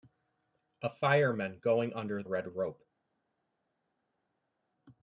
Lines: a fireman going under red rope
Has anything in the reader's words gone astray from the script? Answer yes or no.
no